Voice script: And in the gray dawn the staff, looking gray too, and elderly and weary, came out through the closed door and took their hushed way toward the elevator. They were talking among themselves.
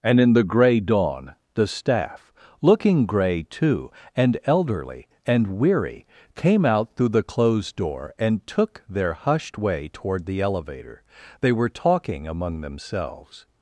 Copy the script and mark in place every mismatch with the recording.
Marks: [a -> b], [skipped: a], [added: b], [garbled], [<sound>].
And in the gray dawn the staff, looking gray too, and elderly and weary, came out through the closed door and took their hushed way toward the elevator. They were talking among themselves.